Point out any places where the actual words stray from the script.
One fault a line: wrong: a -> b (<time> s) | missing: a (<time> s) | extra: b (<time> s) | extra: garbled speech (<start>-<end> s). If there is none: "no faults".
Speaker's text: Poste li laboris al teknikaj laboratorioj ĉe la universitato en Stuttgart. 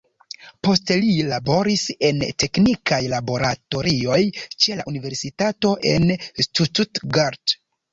wrong: al -> en (2.1 s)